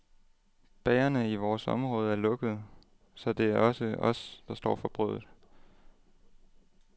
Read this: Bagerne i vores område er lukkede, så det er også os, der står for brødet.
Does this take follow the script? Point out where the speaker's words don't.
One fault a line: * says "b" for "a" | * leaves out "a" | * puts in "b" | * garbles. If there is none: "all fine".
all fine